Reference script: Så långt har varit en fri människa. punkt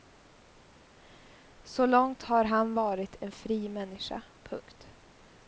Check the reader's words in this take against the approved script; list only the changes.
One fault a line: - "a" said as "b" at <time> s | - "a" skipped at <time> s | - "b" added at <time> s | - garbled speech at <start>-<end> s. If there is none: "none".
- "han" added at 2.5 s